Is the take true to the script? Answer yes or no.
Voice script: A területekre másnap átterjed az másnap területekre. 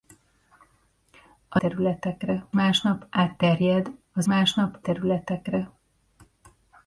yes